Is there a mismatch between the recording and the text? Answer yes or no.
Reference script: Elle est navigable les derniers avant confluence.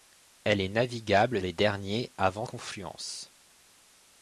no